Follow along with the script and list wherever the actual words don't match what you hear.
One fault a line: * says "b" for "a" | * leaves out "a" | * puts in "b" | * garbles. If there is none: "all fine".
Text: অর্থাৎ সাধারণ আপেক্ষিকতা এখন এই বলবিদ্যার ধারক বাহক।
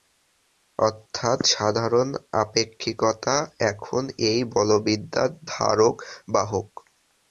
all fine